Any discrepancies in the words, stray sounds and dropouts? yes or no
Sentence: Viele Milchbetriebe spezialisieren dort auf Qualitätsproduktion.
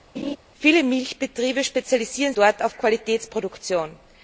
yes